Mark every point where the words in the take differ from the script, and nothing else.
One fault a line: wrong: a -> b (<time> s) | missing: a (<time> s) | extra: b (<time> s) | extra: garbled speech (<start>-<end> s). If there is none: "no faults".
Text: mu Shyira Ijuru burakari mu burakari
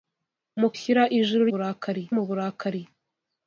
no faults